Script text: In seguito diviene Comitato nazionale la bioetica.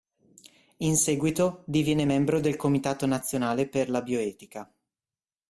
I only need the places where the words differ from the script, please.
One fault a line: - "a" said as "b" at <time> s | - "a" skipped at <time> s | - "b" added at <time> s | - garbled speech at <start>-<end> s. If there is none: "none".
- "membro del" added at 2.0 s
- "per" added at 3.7 s